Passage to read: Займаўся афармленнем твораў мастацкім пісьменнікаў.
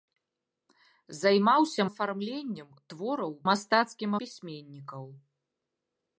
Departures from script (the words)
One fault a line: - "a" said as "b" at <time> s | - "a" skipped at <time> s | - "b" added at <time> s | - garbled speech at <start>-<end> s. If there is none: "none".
none